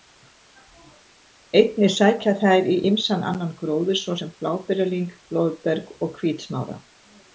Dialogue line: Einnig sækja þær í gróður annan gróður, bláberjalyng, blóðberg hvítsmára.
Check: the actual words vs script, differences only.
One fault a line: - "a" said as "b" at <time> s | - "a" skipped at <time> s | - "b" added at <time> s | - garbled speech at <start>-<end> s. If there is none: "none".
- "gróður" said as "ýmsan" at 2.9 s
- "svo sem" added at 4.0 s
- "og" added at 6.1 s